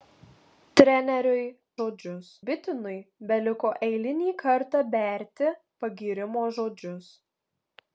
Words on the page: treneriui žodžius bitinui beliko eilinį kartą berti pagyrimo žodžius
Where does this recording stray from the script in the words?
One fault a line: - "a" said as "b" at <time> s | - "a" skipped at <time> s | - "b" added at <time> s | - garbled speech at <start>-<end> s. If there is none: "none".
none